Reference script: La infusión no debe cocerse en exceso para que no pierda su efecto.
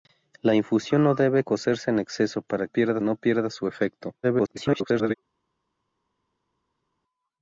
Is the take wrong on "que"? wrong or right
wrong